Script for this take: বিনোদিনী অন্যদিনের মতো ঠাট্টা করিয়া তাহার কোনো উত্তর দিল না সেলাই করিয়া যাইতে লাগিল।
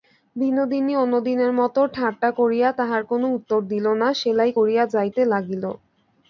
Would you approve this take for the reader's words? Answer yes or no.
yes